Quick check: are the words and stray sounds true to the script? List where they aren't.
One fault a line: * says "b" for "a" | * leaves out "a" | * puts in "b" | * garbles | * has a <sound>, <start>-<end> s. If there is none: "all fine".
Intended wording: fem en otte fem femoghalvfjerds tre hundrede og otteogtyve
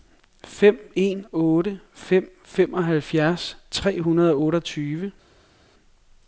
all fine